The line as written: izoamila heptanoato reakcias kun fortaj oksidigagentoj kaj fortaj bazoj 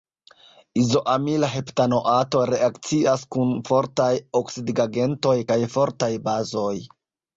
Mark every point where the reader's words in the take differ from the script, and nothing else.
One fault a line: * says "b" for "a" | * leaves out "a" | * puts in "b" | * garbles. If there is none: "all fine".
all fine